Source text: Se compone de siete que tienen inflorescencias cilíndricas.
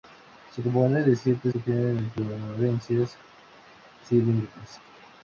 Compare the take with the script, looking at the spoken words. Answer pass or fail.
pass